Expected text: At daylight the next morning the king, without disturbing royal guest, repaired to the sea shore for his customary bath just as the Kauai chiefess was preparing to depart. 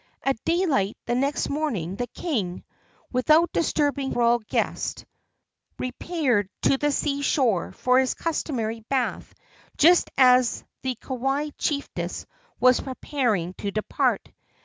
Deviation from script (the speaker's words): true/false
false